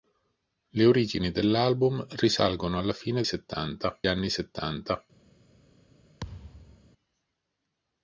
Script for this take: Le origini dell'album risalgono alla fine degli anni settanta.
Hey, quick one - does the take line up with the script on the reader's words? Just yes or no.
no